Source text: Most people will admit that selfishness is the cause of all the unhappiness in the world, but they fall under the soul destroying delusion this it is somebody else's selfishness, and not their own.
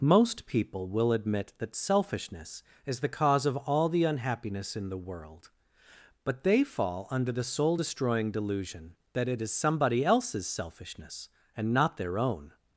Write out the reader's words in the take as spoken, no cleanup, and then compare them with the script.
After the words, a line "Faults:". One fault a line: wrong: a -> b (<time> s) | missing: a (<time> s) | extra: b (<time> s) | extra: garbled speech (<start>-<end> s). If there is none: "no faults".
Most people will admit that selfishness is the cause of all the unhappiness in the world, but they fall under the soul destroying delusion that it is somebody else's selfishness, and not their own.
Faults:
wrong: this -> that (9.1 s)